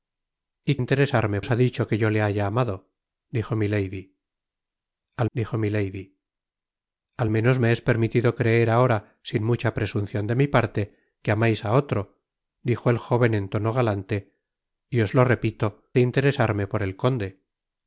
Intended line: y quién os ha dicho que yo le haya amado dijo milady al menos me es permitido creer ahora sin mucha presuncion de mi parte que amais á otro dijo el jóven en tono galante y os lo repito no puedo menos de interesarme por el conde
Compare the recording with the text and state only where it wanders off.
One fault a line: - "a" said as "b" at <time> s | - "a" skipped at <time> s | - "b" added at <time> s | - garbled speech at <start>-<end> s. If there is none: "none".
- "quién" said as "interesarme" at 0.8 s
- "dijo milady al" added at 5.3 s
- "no puedo menos" skipped at 15.7 s